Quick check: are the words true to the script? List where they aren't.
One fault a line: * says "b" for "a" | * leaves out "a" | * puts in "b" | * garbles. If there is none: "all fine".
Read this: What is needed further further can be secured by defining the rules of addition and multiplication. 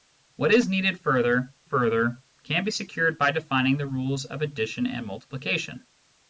all fine